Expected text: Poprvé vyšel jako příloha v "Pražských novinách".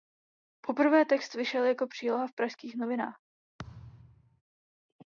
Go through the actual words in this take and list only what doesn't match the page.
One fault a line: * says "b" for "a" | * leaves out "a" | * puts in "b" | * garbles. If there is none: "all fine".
* puts in "text"